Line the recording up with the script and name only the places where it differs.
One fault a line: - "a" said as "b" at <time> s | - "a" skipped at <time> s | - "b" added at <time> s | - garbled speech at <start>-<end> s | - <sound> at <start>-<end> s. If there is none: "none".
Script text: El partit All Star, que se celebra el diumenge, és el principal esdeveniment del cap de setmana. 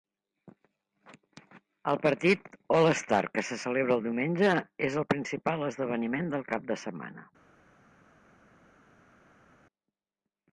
none